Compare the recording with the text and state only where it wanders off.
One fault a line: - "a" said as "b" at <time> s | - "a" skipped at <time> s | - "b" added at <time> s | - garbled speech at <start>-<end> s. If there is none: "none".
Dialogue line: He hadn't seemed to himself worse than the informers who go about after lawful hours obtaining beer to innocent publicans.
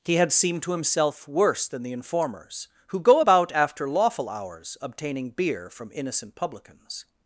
- "hadn't" said as "had" at 0.1 s
- "to" said as "from" at 5.7 s